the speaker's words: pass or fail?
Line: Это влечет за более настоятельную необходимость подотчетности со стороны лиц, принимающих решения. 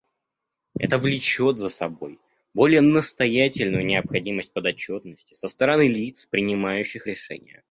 fail